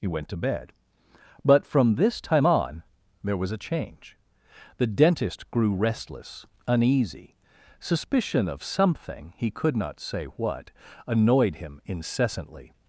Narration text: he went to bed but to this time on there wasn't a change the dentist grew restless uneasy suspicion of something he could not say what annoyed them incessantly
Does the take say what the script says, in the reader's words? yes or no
no